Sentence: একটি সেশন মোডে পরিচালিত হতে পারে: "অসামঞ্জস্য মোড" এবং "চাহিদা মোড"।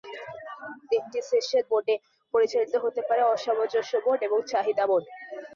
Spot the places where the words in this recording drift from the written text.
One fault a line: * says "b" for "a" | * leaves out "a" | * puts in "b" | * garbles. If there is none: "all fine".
all fine